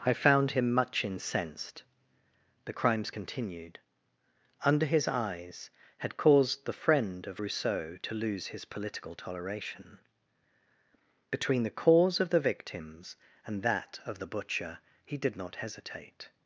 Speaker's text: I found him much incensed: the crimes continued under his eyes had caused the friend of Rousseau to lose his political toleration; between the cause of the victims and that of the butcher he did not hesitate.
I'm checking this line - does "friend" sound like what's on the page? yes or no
yes